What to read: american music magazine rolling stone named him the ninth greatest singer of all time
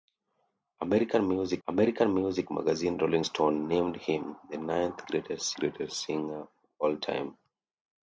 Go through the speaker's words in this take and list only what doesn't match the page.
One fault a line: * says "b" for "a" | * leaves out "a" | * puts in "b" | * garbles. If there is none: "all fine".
* puts in "american music"
* puts in "greatest"